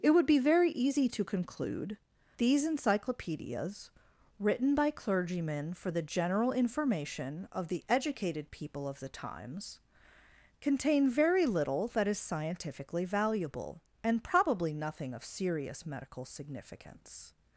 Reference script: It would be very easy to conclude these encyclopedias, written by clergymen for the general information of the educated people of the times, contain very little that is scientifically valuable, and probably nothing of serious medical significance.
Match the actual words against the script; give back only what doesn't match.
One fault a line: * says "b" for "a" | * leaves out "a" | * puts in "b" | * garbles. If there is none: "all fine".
all fine